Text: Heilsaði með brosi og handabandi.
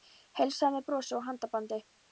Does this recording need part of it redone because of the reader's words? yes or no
no